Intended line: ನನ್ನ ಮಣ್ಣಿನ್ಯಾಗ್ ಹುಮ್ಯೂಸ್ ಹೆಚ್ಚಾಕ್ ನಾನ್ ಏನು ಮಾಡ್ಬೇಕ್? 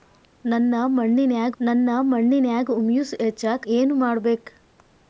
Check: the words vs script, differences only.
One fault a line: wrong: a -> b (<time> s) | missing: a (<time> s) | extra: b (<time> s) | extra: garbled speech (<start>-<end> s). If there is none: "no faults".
extra: ನನ್ನ ಮಣ್ಣಿನ್ಯಾಗ್ (1.6 s)
missing: ನಾನ್ (3.7 s)